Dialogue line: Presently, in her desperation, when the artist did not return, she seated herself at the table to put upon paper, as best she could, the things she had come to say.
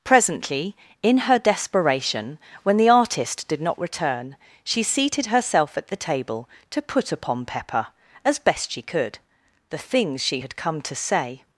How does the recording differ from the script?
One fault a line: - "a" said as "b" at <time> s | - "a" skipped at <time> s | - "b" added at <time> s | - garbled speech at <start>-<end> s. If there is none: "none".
- "paper" said as "pepper" at 7.5 s